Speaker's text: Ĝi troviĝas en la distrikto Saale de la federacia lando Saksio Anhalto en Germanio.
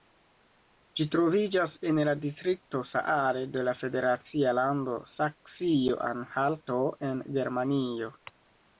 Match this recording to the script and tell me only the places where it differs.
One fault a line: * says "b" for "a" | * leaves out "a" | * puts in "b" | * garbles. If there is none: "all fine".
all fine